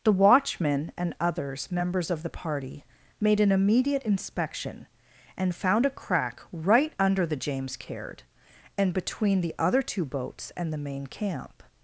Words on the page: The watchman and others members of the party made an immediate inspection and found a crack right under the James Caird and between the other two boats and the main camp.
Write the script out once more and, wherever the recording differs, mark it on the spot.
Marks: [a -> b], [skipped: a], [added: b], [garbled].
The watchman and others members of the party made an immediate inspection and found a crack right under the James Caird and between the other two boats and the main camp.